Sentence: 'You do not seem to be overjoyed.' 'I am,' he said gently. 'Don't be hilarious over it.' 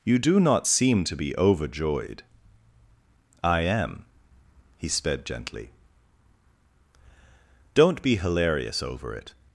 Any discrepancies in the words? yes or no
yes